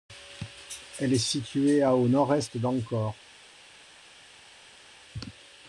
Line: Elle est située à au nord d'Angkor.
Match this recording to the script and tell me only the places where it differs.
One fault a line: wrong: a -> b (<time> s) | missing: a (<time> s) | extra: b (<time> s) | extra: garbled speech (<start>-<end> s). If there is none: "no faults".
extra: est (2.3 s)